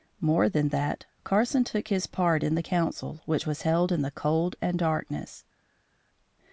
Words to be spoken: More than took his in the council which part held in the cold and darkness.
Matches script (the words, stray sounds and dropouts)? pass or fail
fail